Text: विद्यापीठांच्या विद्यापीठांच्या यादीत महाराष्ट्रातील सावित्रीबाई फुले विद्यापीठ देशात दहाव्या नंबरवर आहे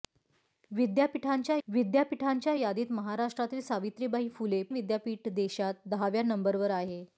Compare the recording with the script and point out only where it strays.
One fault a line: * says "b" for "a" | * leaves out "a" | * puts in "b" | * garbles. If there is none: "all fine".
all fine